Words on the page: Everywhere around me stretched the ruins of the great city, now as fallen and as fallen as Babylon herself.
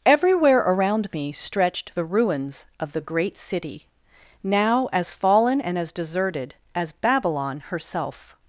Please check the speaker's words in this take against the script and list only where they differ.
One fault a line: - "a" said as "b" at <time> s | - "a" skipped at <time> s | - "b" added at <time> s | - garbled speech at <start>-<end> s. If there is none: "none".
- "fallen" said as "deserted" at 5.9 s